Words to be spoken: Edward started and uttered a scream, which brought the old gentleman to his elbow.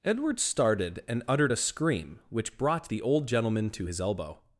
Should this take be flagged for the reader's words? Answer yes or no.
no